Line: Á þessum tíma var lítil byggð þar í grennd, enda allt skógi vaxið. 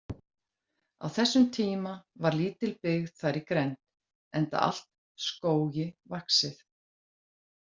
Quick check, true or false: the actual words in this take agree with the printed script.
true